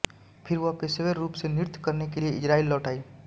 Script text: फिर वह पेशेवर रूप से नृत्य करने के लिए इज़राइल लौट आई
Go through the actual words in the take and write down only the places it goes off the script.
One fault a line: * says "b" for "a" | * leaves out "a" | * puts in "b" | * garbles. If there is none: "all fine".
all fine